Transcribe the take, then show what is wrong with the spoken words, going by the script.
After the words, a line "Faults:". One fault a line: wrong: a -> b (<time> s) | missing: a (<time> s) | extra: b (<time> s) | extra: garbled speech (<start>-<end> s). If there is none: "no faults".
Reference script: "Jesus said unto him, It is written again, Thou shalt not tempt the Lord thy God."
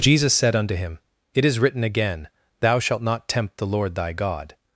"Jesus said unto him, It is written again, Thou shalt not tempt the Lord thy God."
Faults:
no faults